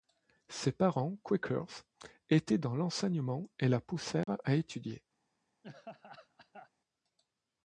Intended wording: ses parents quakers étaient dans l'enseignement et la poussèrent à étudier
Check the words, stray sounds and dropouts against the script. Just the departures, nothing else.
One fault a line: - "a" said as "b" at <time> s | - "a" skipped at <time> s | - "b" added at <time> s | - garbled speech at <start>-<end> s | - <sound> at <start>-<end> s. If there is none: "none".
- dropout at 4.2-4.3 s
- laugh at 5.6-6.7 s